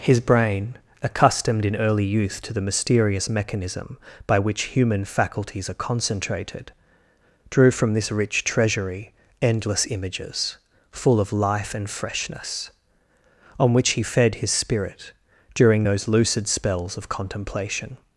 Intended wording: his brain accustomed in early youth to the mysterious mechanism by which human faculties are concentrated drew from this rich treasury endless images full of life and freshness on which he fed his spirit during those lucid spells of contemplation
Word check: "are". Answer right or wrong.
right